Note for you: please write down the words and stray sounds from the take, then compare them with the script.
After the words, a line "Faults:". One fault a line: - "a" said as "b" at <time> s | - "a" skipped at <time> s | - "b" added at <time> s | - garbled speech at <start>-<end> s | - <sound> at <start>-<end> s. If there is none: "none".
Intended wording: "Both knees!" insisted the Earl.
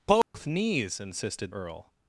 "Both knees!" insisted Earl.
Faults:
- dropout at 0.2-0.3 s
- "the" skipped at 1.5 s